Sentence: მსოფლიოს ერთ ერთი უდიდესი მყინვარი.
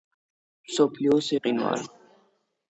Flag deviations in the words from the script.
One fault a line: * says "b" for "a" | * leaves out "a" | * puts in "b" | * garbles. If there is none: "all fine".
* leaves out "ერთ ერთი უდიდესი"